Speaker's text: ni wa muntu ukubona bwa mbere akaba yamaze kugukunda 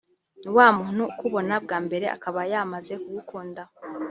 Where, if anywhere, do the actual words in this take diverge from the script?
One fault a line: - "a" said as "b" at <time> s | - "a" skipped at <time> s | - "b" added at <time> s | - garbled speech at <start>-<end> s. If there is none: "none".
none